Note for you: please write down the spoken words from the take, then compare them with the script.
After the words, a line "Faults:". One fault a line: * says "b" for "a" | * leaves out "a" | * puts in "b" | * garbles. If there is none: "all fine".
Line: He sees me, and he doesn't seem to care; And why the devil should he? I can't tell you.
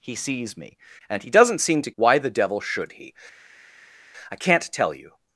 He sees me, and he doesn't seem to why the devil should he? I can't tell you.
Faults:
* leaves out "care And"